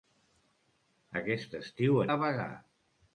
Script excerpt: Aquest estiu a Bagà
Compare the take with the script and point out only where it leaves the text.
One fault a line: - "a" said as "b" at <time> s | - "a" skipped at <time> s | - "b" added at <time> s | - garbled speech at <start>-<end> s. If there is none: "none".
none